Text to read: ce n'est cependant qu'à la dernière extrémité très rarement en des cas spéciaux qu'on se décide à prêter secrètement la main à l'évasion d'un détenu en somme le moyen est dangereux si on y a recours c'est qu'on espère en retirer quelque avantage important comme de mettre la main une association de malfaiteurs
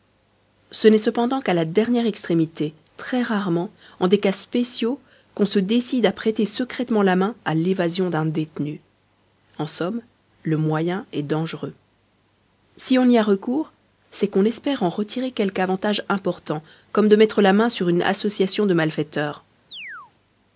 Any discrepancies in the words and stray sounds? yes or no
yes